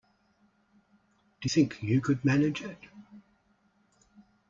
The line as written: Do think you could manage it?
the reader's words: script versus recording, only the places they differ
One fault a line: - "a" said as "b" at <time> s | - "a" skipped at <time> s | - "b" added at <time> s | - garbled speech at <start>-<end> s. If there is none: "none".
none